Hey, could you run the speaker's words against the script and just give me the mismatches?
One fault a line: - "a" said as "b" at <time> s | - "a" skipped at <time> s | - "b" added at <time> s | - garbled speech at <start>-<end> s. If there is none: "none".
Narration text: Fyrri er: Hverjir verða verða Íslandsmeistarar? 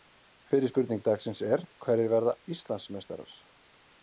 - "spurning dagsins" added at 0.7 s
- "verða" skipped at 2.4 s